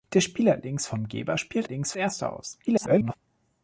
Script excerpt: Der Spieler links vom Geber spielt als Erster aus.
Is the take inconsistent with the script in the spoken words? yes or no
yes